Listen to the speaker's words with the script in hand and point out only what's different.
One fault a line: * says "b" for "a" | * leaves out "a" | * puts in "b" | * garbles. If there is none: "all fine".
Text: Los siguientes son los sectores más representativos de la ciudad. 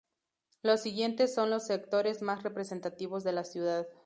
all fine